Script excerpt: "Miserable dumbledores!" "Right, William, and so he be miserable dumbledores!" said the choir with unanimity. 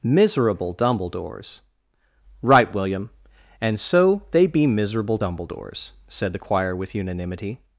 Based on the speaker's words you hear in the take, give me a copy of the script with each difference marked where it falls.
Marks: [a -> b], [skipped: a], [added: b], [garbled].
"Miserable dumbledores!" "Right, William, and so [he -> they] be miserable dumbledores!" said the choir with unanimity.